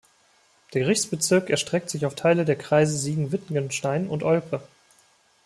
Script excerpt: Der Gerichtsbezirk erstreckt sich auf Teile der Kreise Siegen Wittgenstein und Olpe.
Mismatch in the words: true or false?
false